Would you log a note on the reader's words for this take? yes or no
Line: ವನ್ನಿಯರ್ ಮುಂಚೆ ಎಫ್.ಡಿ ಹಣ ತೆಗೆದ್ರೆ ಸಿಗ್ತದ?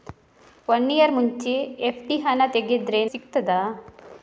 no